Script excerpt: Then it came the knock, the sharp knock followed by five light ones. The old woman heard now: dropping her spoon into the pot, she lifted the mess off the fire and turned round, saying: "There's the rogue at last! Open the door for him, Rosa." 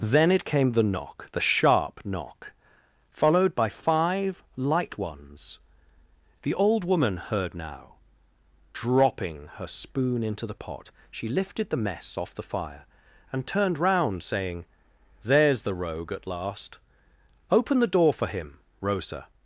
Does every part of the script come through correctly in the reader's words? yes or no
yes